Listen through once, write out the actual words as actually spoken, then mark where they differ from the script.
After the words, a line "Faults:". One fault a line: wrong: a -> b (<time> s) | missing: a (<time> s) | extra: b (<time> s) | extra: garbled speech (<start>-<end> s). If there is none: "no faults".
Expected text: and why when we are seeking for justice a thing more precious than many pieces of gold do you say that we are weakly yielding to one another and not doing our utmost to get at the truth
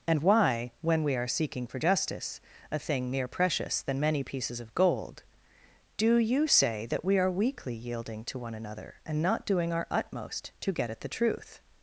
and why when we are seeking for justice a thing mere precious than many pieces of gold do you say that we are weakly yielding to one another and not doing our utmost to get at the truth
Faults:
wrong: more -> mere (3.1 s)